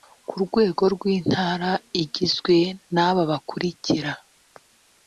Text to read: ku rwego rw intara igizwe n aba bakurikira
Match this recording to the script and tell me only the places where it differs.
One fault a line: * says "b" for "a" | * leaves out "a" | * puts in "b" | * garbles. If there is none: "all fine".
all fine